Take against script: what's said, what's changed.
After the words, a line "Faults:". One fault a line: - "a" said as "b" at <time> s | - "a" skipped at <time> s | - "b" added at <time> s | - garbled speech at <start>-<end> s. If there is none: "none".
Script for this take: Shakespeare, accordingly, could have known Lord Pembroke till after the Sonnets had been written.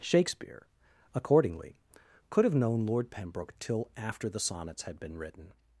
Shakespeare, accordingly, could have known Lord Pembroke till after the Sonnets had been written.
Faults:
none